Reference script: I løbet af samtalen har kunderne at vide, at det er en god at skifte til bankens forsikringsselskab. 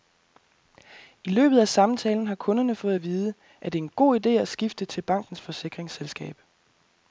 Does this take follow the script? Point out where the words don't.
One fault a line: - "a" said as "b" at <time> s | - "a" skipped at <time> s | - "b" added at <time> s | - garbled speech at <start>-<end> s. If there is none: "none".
- "fået" added at 2.7 s
- "ide" added at 4.2 s